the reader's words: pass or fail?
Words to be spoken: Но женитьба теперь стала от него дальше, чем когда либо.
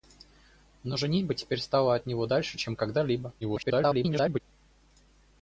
fail